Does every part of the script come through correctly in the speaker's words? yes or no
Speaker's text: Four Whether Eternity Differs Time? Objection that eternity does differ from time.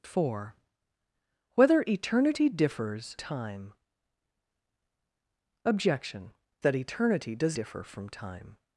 yes